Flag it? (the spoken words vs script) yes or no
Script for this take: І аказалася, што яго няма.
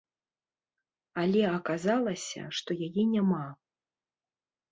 yes